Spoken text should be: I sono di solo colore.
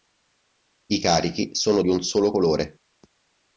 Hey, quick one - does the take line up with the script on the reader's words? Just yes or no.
no